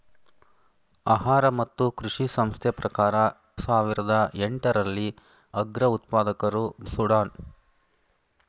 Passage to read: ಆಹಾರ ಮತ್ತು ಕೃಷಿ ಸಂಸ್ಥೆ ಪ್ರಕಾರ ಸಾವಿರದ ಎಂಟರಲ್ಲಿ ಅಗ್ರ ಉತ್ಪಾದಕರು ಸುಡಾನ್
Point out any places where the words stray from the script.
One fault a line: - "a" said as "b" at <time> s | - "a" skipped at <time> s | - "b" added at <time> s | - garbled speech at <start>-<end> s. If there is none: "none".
none